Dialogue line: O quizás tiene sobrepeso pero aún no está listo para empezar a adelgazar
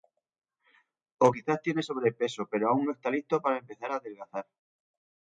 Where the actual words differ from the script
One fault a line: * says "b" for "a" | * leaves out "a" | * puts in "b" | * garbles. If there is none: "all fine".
all fine